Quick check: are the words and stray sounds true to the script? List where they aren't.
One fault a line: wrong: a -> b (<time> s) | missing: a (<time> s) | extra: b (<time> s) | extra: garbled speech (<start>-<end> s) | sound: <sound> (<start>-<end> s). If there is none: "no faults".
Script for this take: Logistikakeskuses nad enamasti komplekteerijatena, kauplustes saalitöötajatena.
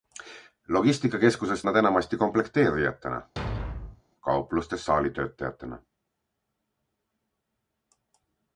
sound: thud (3.4-4.0 s)